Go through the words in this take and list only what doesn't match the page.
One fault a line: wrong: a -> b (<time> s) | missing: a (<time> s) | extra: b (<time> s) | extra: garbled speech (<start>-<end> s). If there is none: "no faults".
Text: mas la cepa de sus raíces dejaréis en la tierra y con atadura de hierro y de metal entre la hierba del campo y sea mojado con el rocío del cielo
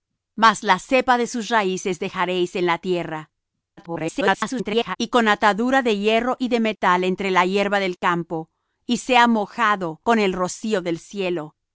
extra: garbled speech (3.8-5.0 s)